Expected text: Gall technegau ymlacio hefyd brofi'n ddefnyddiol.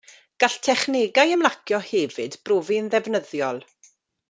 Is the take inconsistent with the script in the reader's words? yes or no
no